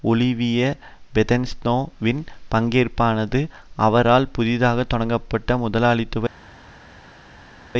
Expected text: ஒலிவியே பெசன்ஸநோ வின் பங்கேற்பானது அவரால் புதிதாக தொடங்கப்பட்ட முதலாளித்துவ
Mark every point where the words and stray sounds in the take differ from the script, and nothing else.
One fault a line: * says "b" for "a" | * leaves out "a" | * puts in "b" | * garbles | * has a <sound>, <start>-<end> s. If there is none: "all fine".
all fine